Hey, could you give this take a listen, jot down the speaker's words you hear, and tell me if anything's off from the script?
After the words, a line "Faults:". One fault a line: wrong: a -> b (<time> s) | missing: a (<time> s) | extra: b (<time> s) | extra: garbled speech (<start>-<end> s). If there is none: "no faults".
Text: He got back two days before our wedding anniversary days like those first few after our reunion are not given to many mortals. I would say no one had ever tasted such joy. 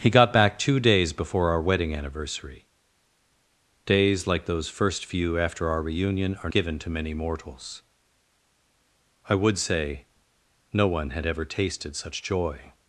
He got back two days before our wedding anniversary days like those first few after our reunion are given to many mortals. I would say no one had ever tasted such joy.
Faults:
missing: not (6.5 s)